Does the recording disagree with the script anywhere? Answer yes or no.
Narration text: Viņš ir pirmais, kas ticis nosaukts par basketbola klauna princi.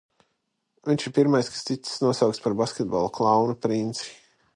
no